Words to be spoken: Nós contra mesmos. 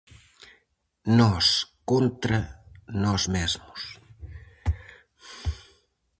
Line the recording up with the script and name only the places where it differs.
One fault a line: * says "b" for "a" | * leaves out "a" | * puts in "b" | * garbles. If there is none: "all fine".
* puts in "nós"